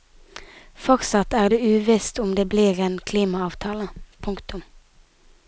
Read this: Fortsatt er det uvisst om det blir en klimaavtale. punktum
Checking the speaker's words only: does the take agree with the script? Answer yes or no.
yes